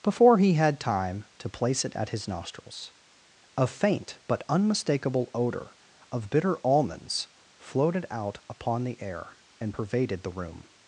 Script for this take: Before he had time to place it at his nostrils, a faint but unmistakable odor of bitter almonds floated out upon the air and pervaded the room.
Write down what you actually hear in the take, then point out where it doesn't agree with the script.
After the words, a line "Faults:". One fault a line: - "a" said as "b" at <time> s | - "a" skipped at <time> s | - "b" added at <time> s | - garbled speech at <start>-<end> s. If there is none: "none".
Before he had time to place it at his nostrils, a faint but unmistakable odor of bitter almonds floated out upon the air and pervaded the room.
Faults:
none